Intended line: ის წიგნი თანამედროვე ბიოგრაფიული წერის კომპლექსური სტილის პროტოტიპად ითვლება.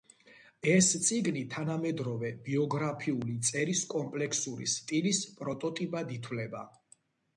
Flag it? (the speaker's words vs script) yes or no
yes